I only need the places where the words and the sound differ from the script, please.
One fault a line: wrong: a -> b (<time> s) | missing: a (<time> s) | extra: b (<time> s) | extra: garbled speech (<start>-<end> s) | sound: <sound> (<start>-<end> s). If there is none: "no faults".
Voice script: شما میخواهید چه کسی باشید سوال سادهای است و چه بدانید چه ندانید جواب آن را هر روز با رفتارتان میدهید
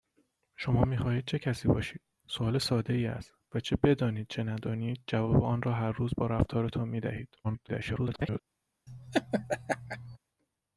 extra: garbled speech (7.4-8.4 s)
sound: laugh (8.9-10.2 s)